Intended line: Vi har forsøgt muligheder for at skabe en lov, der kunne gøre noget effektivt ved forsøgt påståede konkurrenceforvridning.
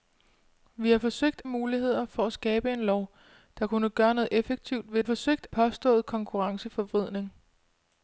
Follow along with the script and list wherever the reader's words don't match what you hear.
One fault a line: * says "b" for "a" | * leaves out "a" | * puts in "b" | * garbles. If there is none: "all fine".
all fine